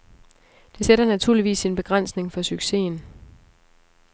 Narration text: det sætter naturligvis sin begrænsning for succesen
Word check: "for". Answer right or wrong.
right